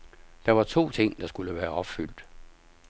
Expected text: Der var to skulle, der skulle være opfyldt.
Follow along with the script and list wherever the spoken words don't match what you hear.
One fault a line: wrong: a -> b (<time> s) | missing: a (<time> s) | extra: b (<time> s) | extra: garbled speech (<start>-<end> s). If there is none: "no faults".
wrong: skulle -> ting (0.9 s)